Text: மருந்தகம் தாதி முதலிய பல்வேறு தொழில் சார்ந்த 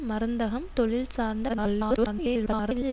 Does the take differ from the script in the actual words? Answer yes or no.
yes